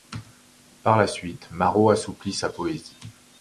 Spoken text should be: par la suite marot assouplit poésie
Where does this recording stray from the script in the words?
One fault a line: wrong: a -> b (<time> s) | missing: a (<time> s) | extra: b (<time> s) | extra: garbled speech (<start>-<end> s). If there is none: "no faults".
extra: sa (2.3 s)